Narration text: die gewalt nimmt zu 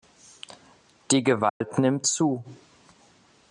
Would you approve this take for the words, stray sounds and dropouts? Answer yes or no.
no